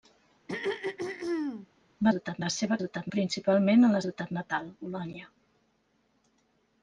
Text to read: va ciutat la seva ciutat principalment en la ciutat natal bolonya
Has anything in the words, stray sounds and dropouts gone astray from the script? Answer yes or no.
yes